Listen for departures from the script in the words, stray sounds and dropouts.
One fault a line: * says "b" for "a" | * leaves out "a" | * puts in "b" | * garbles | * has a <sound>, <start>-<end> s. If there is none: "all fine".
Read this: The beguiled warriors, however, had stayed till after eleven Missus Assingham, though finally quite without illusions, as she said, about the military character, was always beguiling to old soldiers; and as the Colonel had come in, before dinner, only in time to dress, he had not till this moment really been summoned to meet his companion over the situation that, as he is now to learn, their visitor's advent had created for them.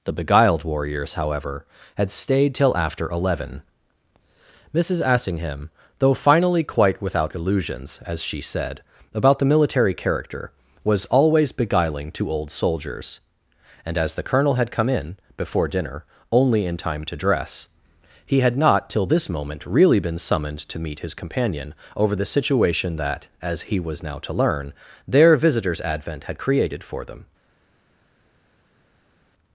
* says "was" for "is"